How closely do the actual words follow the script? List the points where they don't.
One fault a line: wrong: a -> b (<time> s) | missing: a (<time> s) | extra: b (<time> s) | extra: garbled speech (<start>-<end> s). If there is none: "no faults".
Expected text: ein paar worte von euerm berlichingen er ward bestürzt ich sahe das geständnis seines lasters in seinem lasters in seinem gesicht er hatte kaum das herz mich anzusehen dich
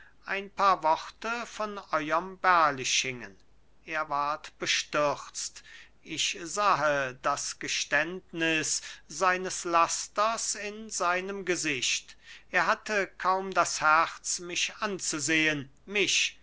missing: lasters in seinem (11.4 s)
wrong: dich -> mich (15.8 s)